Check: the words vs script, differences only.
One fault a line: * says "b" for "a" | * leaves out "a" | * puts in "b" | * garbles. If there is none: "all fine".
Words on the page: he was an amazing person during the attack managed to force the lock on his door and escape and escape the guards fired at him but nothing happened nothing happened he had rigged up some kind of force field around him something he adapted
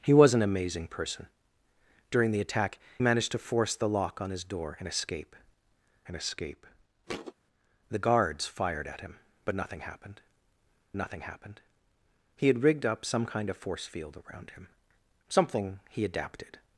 all fine